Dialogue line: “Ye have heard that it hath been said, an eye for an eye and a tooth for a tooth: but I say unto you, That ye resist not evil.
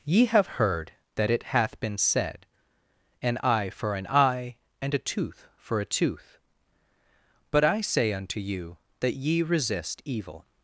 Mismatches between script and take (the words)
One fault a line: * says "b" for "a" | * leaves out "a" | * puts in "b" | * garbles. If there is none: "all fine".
* leaves out "not"